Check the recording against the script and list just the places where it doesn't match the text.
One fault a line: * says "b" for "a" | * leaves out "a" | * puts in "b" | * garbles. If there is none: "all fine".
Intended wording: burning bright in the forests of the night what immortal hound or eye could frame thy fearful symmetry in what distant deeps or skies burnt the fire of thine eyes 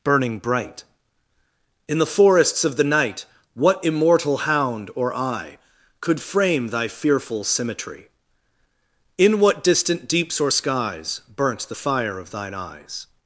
all fine